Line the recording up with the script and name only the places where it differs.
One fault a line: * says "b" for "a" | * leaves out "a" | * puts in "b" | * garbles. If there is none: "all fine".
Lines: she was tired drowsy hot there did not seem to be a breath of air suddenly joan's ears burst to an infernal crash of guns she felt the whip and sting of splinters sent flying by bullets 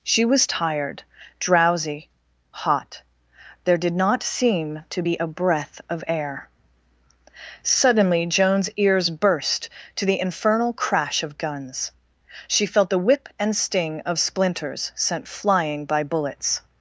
* says "the" for "an"